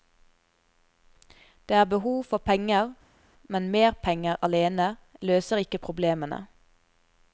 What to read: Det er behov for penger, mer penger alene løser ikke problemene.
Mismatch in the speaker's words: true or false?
true